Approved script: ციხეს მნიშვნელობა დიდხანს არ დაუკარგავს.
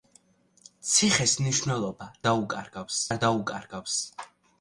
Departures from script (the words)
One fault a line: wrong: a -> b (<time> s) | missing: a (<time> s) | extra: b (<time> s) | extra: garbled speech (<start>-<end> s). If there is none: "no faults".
wrong: დიდხანს -> დაუკარგავს (2.3 s)